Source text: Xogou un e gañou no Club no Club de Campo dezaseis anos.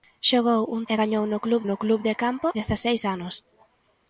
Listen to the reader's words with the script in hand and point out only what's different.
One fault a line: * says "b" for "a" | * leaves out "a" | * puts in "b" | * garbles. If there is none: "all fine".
all fine